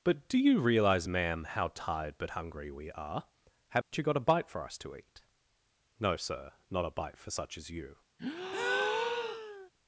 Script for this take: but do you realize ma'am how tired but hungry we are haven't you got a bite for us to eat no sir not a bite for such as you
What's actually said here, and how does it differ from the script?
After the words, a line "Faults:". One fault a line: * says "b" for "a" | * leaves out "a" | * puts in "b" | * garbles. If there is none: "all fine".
but do you realize ma'am how tired but hungry we are haven't you got a bite for us to eat no sir not a bite for such as you
Faults:
all fine